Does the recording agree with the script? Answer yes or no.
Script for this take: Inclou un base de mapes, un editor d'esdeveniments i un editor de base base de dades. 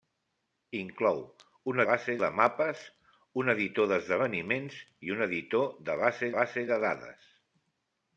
yes